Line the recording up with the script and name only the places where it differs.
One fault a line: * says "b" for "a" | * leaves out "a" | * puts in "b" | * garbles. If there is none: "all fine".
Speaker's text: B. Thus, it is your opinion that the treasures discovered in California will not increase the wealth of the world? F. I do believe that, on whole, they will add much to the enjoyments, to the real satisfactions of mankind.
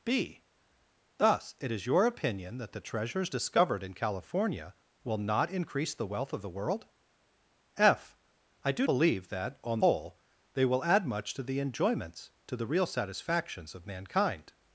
all fine